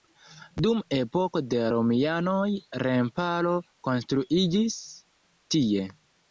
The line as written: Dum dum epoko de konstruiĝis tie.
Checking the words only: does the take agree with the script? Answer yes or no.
no